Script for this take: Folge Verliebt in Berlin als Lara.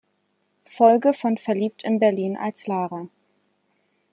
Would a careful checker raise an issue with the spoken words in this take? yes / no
yes